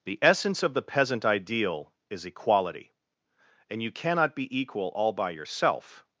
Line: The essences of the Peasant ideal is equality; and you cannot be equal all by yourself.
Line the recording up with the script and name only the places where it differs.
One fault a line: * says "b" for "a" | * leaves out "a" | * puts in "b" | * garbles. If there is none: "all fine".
* says "essence" for "essences"